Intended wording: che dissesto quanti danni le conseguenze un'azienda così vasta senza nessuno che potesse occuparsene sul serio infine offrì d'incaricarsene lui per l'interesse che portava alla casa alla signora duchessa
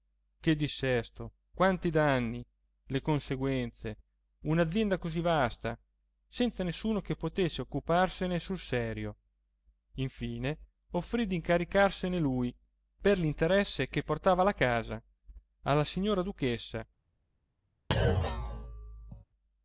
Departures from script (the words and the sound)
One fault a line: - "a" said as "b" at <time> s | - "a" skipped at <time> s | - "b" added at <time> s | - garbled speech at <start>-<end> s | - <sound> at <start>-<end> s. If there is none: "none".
- thud at 17.9-19.2 s